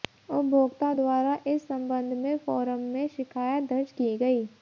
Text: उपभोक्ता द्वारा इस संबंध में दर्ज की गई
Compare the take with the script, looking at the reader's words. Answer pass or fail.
fail